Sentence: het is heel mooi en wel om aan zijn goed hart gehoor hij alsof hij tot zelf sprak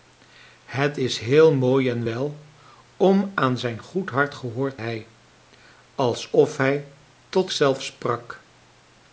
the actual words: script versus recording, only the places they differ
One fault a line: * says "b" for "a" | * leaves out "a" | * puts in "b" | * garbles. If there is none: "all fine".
all fine